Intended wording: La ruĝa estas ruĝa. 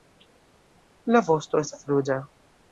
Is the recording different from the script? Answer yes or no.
yes